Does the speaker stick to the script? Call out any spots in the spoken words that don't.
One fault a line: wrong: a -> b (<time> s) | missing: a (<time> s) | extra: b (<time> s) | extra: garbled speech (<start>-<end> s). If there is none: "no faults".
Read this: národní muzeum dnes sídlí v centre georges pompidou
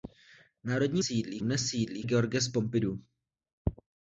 wrong: muzeum -> sídlí (1.0 s)
missing: v centre (2.0 s)